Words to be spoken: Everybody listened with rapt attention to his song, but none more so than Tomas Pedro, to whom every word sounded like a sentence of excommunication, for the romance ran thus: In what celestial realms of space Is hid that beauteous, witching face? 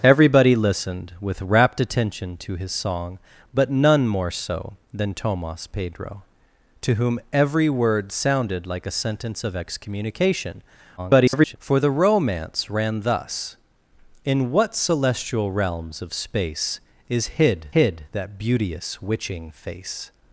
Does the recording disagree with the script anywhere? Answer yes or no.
yes